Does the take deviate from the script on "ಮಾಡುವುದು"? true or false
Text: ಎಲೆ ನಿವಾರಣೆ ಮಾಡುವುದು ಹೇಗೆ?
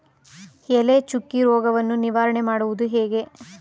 false